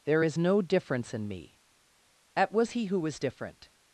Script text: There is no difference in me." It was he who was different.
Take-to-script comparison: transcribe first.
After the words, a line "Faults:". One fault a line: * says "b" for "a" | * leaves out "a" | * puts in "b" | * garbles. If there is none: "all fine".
There is no difference in me." At was he who was different.
Faults:
* says "At" for "It"